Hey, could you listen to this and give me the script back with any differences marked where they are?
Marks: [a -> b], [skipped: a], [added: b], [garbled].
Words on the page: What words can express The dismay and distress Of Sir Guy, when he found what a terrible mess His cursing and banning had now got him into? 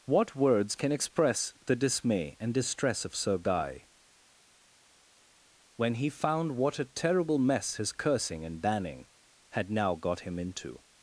What words can express The dismay and distress Of Sir Guy, when he found what a terrible mess His cursing and banning had now got him into?